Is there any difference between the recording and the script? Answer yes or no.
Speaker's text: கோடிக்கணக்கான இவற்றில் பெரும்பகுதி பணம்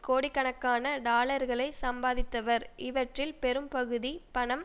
yes